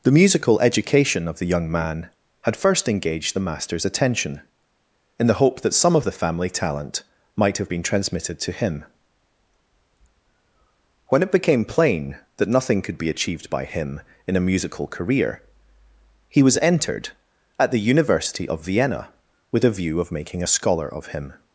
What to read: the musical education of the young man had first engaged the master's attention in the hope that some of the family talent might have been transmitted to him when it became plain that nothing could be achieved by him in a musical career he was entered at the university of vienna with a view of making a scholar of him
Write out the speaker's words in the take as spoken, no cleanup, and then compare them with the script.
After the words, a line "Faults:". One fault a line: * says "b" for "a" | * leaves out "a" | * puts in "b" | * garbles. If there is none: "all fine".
the musical education of the young man had first engaged the master's attention in the hope that some of the family talent might have been transmitted to him when it became plain that nothing could be achieved by him in a musical career he was entered at the university of vienna with a view of making a scholar of him
Faults:
all fine